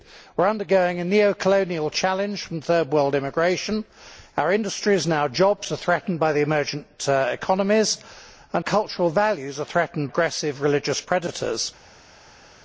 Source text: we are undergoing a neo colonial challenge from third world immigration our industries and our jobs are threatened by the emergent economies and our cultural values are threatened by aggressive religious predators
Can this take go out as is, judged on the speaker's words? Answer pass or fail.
fail